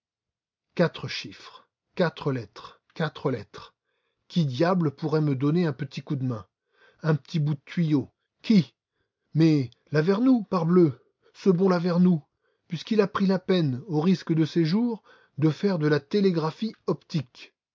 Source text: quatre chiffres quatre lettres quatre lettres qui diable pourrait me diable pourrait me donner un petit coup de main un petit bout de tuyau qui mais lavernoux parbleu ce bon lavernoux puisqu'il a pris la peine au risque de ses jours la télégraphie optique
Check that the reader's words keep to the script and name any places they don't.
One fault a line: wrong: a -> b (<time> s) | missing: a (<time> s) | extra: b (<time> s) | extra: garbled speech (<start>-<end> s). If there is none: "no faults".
missing: diable pourrait me (5.4 s)
extra: de faire de (15.4 s)